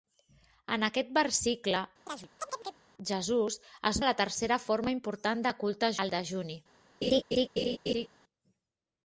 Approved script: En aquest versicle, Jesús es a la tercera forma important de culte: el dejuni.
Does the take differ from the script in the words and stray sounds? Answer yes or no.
yes